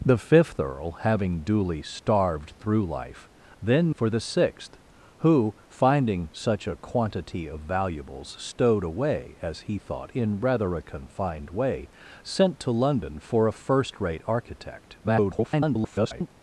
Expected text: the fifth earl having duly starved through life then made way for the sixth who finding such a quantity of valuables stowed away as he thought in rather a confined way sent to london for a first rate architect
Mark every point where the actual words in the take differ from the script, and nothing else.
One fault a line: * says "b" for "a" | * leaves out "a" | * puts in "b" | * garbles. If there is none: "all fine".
* leaves out "made way"
* garbles